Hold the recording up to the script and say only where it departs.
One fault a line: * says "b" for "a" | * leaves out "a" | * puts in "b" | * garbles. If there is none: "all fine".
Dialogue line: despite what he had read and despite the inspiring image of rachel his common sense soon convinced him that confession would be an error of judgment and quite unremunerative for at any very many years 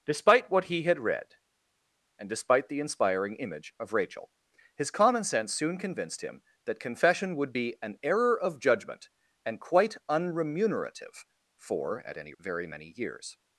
all fine